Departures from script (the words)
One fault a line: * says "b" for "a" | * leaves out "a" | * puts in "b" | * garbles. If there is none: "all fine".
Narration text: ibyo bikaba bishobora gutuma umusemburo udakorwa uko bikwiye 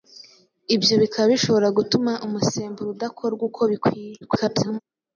* garbles